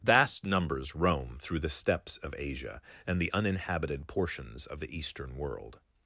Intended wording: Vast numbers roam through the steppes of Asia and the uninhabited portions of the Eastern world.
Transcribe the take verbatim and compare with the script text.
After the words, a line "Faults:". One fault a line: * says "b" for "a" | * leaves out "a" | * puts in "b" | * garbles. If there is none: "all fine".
Vast numbers roam through the steppes of Asia and the uninhabited portions of the Eastern world.
Faults:
all fine